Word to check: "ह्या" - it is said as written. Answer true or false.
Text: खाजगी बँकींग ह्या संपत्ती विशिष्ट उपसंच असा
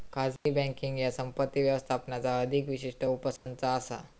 true